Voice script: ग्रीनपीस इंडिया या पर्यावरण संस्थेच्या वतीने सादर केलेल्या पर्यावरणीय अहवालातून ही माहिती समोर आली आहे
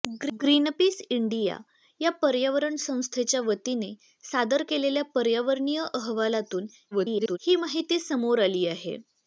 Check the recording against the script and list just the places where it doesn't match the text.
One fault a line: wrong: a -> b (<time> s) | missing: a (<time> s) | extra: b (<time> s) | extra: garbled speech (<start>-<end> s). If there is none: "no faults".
extra: garbled speech (6.9-7.4 s)